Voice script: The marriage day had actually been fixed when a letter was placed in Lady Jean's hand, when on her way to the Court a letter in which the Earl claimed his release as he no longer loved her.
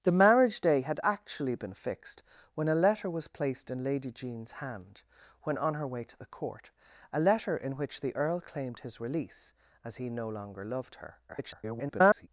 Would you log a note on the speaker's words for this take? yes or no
yes